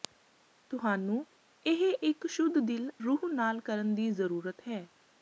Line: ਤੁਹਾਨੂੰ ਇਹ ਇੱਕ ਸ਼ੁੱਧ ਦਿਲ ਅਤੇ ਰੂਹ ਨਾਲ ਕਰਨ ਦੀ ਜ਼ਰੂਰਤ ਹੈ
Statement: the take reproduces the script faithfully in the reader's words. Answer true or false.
false